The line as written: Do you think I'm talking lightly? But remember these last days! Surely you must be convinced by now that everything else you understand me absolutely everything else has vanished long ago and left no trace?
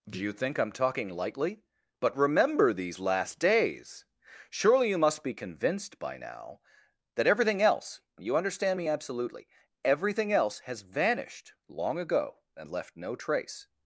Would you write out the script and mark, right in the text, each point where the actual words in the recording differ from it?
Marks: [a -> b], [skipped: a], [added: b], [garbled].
Do you think I'm talking lightly? But remember these last days! Surely you must be convinced by now that everything else you understand me absolutely everything else has vanished long ago and left no trace?